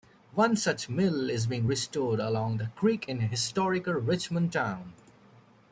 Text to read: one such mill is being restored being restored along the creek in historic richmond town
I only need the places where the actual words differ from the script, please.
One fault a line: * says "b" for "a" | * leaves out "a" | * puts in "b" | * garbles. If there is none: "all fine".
* leaves out "being restored"